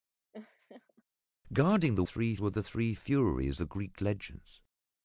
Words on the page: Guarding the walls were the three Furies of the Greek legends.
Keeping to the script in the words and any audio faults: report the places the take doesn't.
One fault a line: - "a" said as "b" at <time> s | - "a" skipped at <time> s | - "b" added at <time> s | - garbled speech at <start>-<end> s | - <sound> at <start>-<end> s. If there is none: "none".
- laugh at 0.3-1.0 s
- "walls" said as "three" at 2.0 s
- "of" skipped at 3.6 s